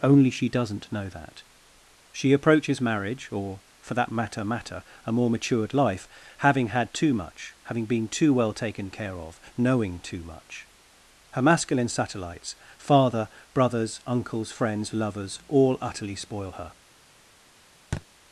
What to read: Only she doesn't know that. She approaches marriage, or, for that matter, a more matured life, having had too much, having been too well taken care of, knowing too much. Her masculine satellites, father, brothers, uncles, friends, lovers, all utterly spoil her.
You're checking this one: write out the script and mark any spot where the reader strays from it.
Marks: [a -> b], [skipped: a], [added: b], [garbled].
Only she doesn't know that. She approaches marriage, or, for that matter, [added: matter] a more matured life, having had too much, having been too well taken care of, knowing too much. Her masculine satellites, father, brothers, uncles, friends, lovers, all utterly spoil her.